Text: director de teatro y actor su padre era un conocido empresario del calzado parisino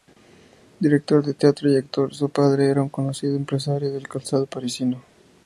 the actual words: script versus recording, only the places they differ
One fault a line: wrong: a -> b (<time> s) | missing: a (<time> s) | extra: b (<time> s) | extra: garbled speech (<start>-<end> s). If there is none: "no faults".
no faults